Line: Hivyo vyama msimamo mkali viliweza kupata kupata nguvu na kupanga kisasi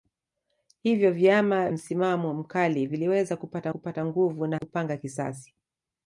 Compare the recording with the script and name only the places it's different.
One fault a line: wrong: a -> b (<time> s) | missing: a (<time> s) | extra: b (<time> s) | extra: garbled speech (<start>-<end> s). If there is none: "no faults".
no faults